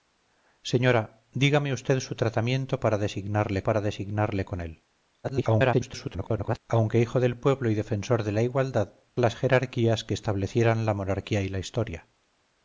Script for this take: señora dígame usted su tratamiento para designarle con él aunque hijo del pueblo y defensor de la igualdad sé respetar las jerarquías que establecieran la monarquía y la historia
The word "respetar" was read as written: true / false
false